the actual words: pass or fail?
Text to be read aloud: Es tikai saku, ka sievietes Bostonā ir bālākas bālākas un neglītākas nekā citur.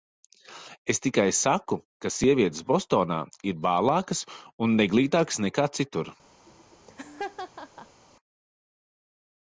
fail